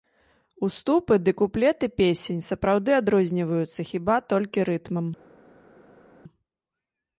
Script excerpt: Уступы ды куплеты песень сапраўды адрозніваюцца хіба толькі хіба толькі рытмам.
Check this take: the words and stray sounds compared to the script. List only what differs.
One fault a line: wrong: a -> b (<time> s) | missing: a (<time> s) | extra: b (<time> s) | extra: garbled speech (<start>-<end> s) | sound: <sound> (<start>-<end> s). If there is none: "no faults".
missing: хіба толькі (4.7 s)